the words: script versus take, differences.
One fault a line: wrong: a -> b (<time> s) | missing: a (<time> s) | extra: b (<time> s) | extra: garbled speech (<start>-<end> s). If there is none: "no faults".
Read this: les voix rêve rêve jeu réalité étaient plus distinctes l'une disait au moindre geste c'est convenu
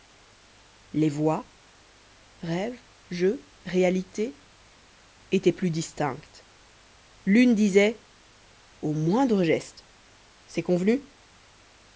missing: rêve (2.8 s)